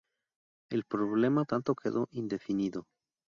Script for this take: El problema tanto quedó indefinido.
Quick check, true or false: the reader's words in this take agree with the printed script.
true